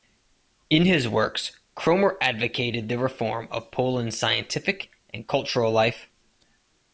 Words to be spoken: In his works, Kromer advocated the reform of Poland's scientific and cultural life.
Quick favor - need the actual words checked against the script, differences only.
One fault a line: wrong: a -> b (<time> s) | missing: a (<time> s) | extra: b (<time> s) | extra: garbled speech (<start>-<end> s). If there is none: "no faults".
no faults